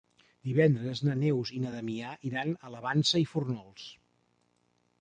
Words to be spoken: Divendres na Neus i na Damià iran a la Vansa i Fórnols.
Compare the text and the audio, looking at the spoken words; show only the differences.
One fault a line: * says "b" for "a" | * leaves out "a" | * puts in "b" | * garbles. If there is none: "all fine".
all fine